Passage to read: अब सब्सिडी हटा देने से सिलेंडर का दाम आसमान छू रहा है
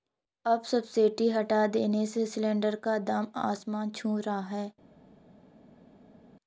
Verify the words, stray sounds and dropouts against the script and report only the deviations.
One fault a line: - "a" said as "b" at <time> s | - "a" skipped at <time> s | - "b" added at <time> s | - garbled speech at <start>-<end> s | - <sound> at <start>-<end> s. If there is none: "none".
none